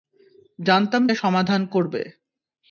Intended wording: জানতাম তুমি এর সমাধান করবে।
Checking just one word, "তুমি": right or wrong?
wrong